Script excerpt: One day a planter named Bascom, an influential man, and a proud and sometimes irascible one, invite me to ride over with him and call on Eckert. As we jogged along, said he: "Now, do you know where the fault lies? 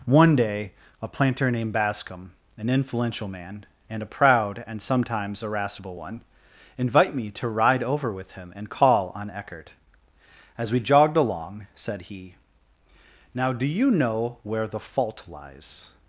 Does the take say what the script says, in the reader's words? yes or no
yes